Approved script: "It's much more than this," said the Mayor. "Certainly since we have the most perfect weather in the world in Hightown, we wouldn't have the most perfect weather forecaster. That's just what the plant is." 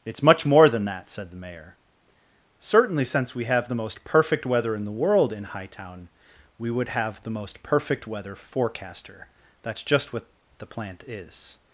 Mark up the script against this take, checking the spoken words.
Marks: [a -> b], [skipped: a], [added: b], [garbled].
"It's much more than [this," -> that] said the Mayor. "Certainly since we have the most perfect weather in the world in Hightown, we [wouldn't -> would] have the most perfect weather forecaster. That's just what the plant is."